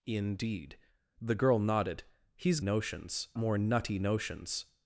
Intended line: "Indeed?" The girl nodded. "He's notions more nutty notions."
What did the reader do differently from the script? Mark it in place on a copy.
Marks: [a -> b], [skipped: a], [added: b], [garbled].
"Indeed?" The girl nodded. "He's notions more nutty notions."